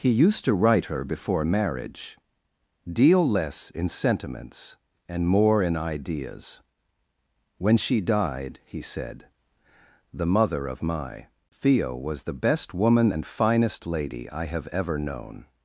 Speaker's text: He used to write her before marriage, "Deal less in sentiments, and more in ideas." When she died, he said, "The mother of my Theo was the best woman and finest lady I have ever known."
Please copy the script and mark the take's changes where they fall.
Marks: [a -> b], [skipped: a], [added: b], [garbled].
He used to write her before marriage, "Deal less in sentiments, and more in ideas." When she died, he said, "The mother of my Theo was the best woman and finest lady I have ever known."